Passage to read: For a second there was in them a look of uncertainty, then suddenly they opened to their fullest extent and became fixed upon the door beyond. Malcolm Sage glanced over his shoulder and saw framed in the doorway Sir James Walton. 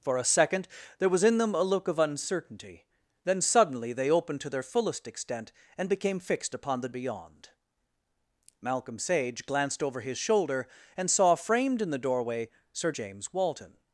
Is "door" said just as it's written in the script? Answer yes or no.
no